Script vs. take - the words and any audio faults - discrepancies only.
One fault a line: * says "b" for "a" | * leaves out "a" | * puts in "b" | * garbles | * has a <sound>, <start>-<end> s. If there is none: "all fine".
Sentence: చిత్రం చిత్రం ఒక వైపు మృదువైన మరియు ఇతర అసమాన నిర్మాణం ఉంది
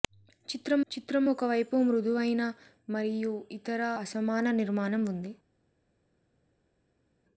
all fine